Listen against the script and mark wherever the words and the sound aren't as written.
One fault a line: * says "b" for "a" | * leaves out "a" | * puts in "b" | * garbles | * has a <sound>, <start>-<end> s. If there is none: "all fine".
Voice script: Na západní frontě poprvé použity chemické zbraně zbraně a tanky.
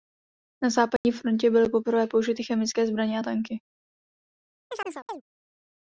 * has a dropout, 1.0-1.0 s
* puts in "byly"
* leaves out "zbraně"
* has a chirp, 4.7-5.2 s